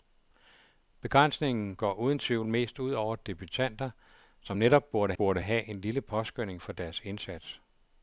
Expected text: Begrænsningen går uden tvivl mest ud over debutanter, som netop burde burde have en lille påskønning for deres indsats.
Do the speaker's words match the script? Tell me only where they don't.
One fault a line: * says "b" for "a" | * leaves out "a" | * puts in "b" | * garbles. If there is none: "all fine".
all fine